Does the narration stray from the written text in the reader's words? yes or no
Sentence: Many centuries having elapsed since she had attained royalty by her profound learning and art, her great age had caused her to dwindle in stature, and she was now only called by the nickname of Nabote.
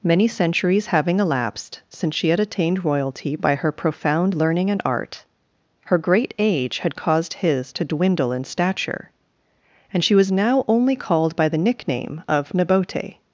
yes